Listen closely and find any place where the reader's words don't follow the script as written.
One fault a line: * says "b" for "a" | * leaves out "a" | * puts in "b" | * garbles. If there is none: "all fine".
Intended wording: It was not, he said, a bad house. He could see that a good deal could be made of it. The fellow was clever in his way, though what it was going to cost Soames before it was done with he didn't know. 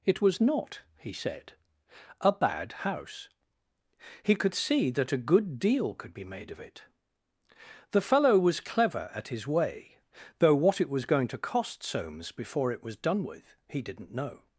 * says "at" for "in"